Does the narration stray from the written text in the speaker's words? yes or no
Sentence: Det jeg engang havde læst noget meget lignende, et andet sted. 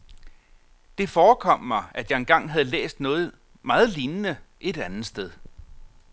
yes